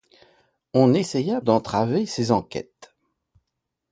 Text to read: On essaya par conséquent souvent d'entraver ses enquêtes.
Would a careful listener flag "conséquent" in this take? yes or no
yes